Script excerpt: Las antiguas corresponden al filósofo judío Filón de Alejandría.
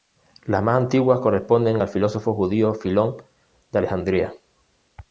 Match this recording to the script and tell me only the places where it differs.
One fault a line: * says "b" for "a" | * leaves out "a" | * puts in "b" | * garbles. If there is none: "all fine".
* puts in "más"